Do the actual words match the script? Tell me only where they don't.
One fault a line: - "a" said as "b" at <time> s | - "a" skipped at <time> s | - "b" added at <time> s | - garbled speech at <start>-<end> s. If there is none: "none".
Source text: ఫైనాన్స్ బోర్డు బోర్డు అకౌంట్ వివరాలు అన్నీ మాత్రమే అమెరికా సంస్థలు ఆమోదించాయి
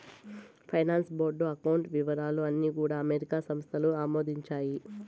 - "బోర్డు" skipped at 1.4 s
- "మాత్రమే" said as "కూడా" at 2.8 s